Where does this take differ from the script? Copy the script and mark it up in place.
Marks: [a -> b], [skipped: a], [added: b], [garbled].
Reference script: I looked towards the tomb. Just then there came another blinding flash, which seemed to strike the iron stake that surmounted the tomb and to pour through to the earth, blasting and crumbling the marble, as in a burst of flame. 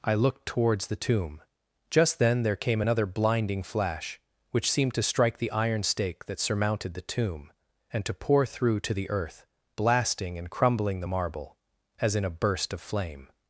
I looked towards the tomb. Just then there came another blinding flash, which seemed to strike the iron stake that surmounted the tomb and to pour through to the earth, blasting and crumbling the marble, as in a burst of flame.